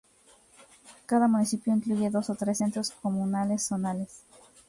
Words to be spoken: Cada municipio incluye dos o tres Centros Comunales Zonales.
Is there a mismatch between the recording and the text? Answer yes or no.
no